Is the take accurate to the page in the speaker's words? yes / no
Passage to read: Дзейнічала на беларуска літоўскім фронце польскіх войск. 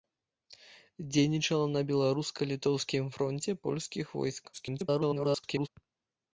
no